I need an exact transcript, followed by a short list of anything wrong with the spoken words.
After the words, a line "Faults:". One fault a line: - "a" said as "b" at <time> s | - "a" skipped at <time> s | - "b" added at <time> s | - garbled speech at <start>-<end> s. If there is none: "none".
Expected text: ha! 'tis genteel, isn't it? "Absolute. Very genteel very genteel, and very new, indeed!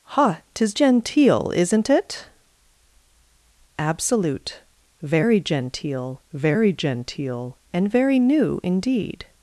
ha! 'tis genteel, isn't it? "Absolute. Very genteel very genteel, and very new, indeed!
Faults:
none